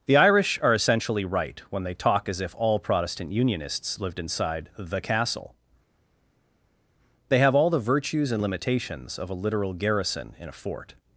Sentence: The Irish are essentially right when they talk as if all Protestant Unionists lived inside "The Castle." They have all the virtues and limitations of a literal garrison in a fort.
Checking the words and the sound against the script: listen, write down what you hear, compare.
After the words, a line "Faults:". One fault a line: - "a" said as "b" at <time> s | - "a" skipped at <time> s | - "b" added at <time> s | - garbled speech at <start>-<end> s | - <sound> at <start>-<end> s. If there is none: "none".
The Irish are essentially right when they talk as if all Protestant Unionists lived inside "The Castle." They have all the virtues and limitations of a literal garrison in a fort.
Faults:
none